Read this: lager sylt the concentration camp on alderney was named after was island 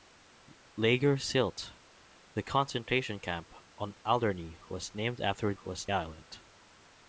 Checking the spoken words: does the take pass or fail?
pass